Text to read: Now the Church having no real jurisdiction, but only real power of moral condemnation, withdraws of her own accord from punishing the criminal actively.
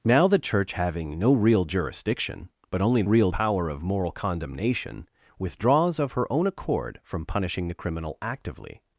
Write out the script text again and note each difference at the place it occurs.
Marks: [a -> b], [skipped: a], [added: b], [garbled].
Now the Church having no real jurisdiction, but only real power of moral condemnation, withdraws of her own accord from punishing the criminal actively.